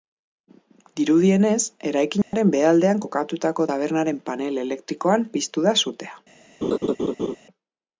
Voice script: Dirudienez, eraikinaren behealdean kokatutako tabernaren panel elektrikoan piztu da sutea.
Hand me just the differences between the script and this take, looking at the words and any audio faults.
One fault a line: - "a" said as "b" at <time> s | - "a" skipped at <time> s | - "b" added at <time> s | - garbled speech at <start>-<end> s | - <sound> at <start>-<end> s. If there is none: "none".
- dropout at 2.2-2.3 s
- laugh at 6.6-7.4 s